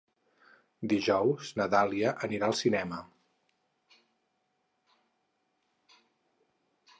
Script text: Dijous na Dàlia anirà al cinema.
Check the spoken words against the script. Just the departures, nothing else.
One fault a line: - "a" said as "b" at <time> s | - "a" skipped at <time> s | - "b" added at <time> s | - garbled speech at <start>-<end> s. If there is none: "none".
none